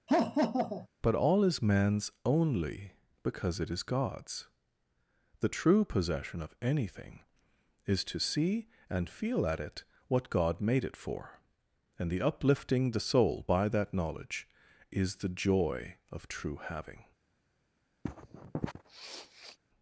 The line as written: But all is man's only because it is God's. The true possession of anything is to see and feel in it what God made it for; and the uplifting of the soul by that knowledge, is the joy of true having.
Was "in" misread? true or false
true